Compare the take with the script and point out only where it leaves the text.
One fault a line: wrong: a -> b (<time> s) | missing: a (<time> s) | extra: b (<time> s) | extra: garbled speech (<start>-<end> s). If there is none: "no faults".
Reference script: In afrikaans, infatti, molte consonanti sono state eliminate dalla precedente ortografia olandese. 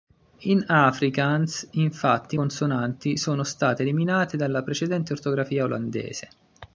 missing: molte (2.4 s)